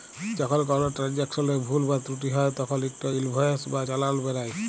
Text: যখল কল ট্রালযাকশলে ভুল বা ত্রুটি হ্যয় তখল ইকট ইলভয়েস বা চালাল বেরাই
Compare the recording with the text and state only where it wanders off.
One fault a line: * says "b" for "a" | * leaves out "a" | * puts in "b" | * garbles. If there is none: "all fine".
all fine